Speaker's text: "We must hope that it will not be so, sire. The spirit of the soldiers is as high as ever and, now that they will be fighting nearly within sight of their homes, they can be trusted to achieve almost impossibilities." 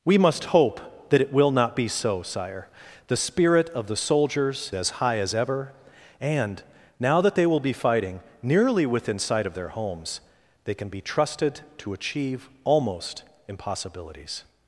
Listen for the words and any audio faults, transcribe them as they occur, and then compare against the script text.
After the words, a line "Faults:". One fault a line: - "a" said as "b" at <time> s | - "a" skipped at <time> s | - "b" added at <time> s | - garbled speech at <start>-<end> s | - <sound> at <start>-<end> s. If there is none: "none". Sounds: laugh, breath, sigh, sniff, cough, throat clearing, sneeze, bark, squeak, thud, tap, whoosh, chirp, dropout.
"We must hope that it will not be so, sire. The spirit of the soldiers as high as ever and, now that they will be fighting nearly within sight of their homes, they can be trusted to achieve almost impossibilities."
Faults:
- "is" skipped at 4.7 s